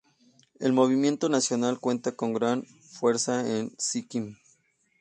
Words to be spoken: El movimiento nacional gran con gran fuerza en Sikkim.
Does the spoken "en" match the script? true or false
true